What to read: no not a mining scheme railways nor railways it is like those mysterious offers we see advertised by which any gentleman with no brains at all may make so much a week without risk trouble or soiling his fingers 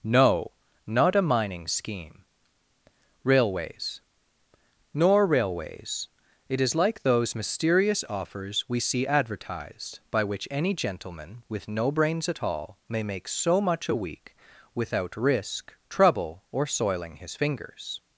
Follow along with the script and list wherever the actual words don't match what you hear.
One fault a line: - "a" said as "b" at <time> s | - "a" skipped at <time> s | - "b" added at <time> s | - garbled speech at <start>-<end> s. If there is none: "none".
none